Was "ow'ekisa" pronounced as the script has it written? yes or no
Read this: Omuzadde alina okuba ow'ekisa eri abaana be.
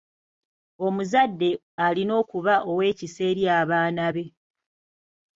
yes